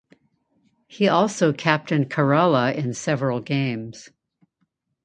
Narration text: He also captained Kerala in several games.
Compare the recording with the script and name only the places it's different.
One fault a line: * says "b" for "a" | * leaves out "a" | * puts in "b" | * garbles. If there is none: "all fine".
all fine